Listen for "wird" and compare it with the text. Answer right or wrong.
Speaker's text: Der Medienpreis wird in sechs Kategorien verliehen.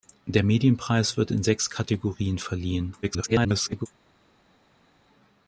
right